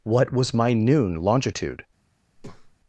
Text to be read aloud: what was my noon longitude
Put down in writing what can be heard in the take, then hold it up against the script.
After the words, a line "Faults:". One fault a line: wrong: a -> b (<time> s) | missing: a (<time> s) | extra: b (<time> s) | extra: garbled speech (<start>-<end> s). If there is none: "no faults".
what was my noon longitude
Faults:
no faults